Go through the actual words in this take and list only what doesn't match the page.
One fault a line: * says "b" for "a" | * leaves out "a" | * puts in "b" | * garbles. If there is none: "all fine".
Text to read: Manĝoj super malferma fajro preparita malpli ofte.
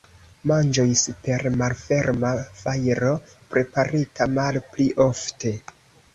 all fine